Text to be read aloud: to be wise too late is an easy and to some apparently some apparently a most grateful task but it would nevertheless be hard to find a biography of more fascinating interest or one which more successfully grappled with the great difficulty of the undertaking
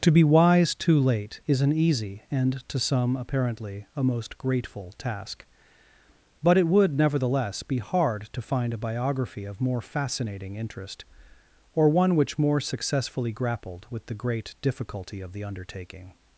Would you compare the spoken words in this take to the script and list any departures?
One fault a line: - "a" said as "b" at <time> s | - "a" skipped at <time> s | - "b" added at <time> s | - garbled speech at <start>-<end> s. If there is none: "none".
- "some apparently" skipped at 3.9 s